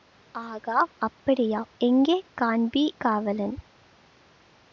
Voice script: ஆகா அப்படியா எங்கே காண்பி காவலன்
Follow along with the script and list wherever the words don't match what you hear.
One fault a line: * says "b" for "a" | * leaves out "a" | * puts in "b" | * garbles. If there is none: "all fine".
all fine